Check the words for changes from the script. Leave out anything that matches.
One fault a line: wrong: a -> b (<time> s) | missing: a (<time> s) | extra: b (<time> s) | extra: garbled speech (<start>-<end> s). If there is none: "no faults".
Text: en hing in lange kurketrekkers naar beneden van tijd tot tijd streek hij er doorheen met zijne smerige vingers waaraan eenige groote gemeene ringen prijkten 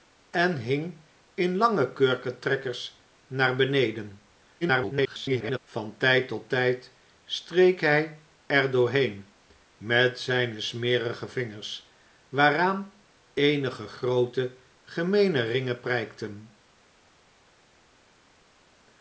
extra: garbled speech (4.6-5.6 s)